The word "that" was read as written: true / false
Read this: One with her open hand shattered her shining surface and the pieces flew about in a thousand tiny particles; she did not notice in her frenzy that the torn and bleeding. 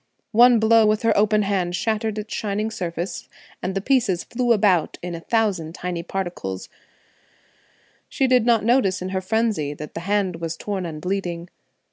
true